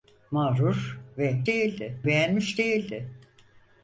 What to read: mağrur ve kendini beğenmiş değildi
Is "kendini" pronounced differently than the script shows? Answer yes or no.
yes